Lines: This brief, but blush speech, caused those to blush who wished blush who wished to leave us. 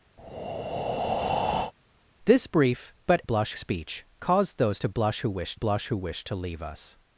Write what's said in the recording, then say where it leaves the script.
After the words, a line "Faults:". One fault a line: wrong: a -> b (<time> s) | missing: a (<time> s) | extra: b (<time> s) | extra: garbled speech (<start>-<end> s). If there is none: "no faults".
This brief, but blush speech, caused those to blush who wished blush who wished to leave us.
Faults:
no faults